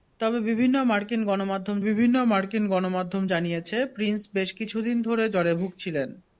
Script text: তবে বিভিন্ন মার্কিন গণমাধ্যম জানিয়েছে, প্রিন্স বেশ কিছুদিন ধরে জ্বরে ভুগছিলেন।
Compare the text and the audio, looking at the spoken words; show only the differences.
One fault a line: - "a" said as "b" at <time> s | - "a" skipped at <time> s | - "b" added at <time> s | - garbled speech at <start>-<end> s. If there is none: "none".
- "বিভিন্ন মার্কিন গণমাধ্যম" added at 1.8 s